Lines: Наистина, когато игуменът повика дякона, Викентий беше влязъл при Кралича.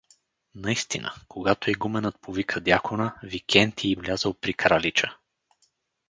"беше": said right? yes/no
no